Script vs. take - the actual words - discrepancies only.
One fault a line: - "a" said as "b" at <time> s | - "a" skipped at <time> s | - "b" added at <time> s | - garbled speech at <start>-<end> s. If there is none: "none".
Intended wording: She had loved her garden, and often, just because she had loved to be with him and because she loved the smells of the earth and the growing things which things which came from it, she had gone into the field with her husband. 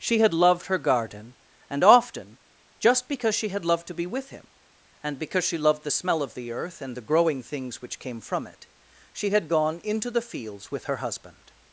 - "smells" said as "smell" at 5.9 s
- "things which" skipped at 8.0 s
- "field" said as "fields" at 10.2 s